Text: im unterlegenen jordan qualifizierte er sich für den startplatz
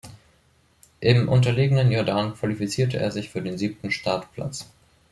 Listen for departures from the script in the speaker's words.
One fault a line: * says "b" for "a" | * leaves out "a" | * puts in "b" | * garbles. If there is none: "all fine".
* puts in "siebten"